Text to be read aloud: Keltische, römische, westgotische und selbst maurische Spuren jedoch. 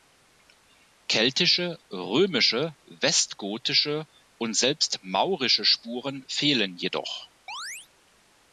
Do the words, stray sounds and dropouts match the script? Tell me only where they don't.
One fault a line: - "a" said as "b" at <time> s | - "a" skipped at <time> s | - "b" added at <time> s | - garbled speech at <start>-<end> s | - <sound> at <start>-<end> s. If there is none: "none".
- "fehlen" added at 6.3 s
- chirp at 7.5-7.9 s